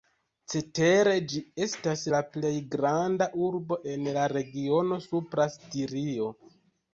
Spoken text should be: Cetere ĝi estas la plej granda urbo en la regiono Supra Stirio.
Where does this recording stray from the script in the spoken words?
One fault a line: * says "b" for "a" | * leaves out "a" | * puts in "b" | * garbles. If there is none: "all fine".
all fine